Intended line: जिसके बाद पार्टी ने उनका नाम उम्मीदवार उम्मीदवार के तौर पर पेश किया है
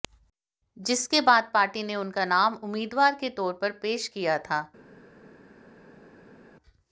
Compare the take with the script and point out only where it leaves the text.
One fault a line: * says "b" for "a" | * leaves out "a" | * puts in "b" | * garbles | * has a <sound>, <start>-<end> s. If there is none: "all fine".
* leaves out "उम्मीदवार"
* says "था" for "है"